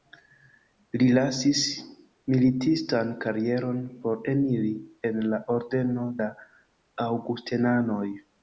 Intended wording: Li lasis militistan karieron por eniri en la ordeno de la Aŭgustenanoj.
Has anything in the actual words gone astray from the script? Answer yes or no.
yes